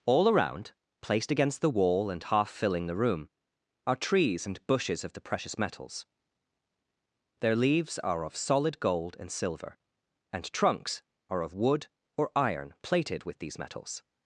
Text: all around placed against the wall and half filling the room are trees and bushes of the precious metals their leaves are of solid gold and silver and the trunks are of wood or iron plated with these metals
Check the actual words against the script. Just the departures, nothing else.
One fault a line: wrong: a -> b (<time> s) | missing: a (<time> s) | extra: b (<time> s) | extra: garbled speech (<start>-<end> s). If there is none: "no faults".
missing: the (10.5 s)